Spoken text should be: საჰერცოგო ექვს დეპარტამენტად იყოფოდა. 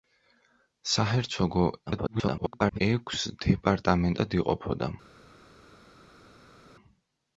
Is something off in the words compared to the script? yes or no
yes